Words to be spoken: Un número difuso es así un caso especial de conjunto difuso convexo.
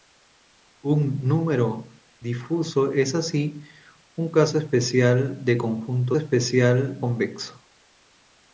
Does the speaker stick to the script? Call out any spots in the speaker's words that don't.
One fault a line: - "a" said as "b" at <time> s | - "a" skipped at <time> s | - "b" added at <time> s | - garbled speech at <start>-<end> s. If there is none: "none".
- "difuso" said as "especial" at 6.2 s